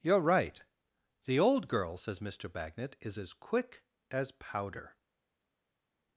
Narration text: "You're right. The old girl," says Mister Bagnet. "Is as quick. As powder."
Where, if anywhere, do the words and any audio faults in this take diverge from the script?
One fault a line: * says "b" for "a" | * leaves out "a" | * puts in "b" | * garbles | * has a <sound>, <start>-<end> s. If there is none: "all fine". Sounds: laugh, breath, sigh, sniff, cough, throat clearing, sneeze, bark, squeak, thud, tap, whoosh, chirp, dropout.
all fine